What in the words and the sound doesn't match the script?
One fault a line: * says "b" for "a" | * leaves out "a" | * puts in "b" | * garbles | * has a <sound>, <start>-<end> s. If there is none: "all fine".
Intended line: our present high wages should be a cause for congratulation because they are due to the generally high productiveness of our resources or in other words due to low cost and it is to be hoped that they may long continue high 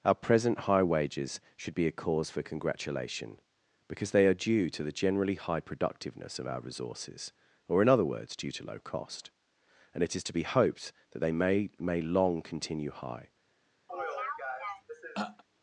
* puts in "may"
* has a throat clearing, 13.9-15.4 s